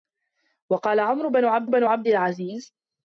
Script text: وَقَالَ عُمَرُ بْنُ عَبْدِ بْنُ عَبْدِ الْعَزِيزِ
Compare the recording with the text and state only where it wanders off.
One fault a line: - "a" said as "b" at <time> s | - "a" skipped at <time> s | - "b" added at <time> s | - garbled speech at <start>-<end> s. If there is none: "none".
none